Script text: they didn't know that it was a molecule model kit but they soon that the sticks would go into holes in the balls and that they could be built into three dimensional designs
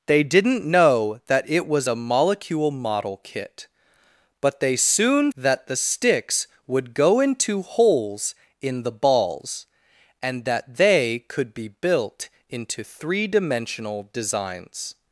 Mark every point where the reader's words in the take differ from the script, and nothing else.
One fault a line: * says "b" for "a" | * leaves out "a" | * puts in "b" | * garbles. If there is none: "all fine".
all fine